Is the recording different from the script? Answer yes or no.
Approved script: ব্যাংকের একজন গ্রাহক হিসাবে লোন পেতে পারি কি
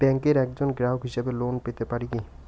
no